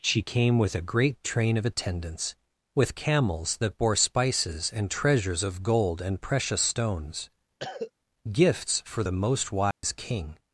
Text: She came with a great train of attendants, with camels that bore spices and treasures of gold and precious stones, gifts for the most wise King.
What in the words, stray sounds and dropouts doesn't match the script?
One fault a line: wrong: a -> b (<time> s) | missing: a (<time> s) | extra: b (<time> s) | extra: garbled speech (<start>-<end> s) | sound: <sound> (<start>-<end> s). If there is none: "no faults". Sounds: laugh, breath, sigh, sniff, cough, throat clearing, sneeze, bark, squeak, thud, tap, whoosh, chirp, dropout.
sound: cough (7.6-7.9 s)
sound: dropout (9.7-9.8 s)